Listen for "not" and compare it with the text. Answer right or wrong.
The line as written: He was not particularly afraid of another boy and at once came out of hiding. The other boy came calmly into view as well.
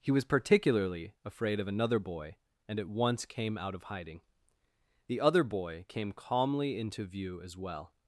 wrong